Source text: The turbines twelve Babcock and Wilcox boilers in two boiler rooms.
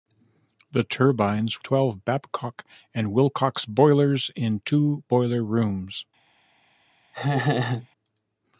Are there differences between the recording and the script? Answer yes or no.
no